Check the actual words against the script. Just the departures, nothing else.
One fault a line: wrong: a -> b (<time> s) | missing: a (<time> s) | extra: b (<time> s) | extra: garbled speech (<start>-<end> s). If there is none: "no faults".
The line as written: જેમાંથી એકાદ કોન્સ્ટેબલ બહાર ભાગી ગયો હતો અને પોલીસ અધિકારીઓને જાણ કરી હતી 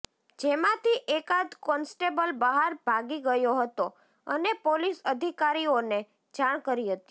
no faults